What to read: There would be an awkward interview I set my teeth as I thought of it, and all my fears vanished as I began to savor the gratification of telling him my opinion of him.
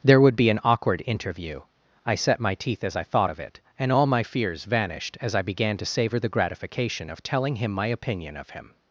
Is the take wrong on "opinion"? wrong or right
right